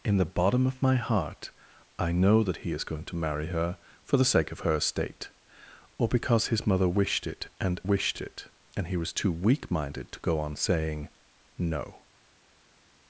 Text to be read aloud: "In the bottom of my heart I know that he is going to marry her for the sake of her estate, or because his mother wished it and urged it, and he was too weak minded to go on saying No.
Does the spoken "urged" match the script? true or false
false